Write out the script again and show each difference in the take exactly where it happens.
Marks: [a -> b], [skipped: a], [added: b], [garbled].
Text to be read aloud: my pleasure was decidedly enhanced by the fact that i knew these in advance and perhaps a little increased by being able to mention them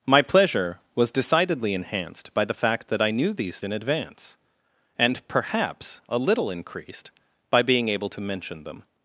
my pleasure was decidedly enhanced by the fact that i knew these in advance and perhaps a little increased by being able to mention them